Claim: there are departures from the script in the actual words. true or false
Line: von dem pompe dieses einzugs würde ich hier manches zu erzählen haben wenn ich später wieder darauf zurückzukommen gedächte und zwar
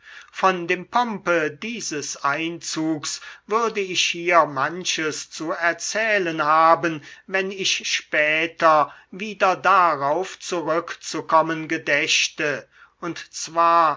false